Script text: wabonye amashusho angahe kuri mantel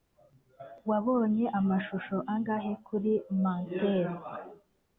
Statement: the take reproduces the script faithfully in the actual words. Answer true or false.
true